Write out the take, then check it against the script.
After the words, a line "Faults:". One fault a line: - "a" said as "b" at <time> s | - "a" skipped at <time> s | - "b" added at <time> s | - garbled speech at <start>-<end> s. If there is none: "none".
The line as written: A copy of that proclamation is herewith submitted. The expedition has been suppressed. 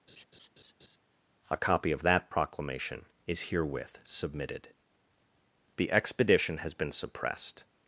A copy of that proclamation is herewith submitted. The expedition has been suppressed.
Faults:
none